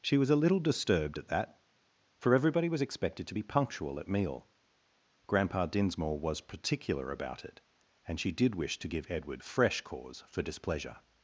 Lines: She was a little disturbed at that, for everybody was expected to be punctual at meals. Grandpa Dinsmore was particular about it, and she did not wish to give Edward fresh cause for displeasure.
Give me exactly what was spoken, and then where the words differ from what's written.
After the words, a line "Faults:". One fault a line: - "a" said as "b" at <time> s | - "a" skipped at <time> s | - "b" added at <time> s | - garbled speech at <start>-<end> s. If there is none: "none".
She was a little disturbed at that, for everybody was expected to be punctual at meal. Grandpa Dinsmore was particular about it, and she did wish to give Edward fresh cause for displeasure.
Faults:
- "meals" said as "meal" at 4.1 s
- "not" skipped at 8.5 s